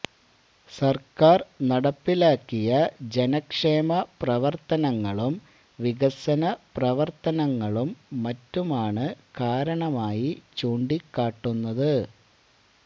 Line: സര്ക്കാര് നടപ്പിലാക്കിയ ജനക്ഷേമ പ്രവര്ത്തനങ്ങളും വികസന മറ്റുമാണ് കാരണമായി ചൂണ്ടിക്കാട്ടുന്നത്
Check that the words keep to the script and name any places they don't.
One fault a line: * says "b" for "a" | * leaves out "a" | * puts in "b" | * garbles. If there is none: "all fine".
* puts in "പ്രവര്ത്തനങ്ങളും"